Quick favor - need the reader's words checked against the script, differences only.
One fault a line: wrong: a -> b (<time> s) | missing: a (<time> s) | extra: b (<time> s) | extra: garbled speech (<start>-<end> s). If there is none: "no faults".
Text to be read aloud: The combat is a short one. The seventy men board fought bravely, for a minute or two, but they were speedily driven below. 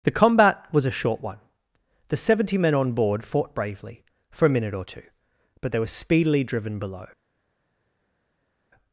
wrong: is -> was (0.7 s)
extra: on (2.7 s)